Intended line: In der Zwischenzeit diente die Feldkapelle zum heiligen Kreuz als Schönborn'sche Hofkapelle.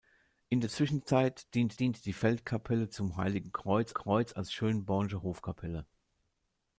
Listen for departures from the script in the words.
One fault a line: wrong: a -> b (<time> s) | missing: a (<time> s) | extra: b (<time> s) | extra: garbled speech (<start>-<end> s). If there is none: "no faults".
extra: diente (1.8 s)
extra: Kreuz (3.9 s)